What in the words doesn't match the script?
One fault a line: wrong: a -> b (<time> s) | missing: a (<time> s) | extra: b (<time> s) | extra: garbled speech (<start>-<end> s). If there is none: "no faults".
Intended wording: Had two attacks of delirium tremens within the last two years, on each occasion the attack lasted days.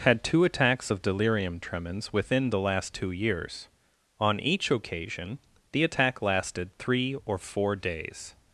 extra: three or four (6.8 s)